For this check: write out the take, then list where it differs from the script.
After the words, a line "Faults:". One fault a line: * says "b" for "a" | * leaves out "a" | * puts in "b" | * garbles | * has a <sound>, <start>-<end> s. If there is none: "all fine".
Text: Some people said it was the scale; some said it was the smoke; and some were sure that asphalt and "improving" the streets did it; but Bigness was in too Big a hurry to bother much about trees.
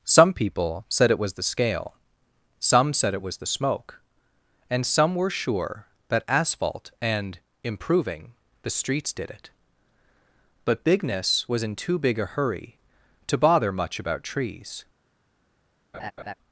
Some people said it was the scale; some said it was the smoke; and some were sure that asphalt and "improving" the streets did it; but Bigness was in too Big a hurry to bother much about trees.
Faults:
* has a laugh, 15.9-16.3 s